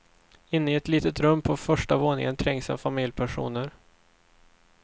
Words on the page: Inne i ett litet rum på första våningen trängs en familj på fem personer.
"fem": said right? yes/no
no